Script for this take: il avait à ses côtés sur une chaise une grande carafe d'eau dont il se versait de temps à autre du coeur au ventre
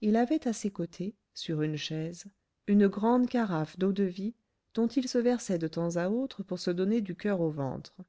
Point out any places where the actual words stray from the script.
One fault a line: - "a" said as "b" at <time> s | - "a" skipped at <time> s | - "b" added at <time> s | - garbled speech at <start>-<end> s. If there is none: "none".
- "de vie" added at 3.9 s
- "pour se donner" added at 6.4 s